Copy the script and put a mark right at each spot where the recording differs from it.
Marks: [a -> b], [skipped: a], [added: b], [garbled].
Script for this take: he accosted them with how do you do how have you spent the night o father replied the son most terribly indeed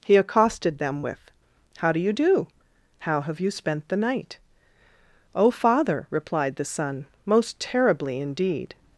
he accosted them with how do you do how have you spent the night o father replied the son most terribly indeed